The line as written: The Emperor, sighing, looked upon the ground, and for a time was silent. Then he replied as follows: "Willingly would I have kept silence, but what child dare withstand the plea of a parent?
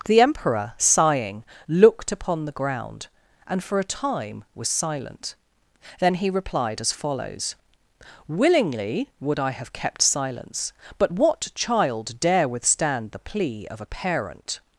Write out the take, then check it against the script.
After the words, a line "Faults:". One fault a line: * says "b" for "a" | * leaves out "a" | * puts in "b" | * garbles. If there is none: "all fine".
The Emperor, sighing, looked upon the ground, and for a time was silent. Then he replied as follows: "Willingly would I have kept silence, but what child dare withstand the plea of a parent?
Faults:
all fine